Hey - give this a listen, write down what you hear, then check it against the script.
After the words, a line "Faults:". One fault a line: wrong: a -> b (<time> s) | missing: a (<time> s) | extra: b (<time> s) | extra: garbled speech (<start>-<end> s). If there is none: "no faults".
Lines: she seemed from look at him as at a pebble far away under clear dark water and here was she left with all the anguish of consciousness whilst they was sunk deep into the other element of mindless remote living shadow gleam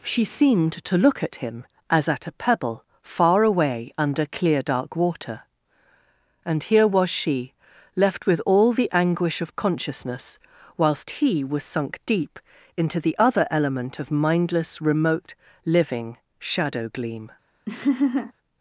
she seemed to look at him as at a pebble far away under clear dark water and here was she left with all the anguish of consciousness whilst he was sunk deep into the other element of mindless remote living shadow gleam
Faults:
wrong: from -> to (0.7 s)
wrong: they -> he (11.2 s)